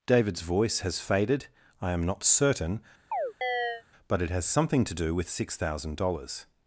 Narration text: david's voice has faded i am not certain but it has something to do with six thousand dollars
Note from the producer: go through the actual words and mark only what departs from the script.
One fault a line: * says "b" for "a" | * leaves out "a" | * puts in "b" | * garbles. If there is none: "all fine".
all fine